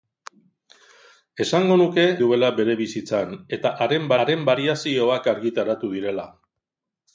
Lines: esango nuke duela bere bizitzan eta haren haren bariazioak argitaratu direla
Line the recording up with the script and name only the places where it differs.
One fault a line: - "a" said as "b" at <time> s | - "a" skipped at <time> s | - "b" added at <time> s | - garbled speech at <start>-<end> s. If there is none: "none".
none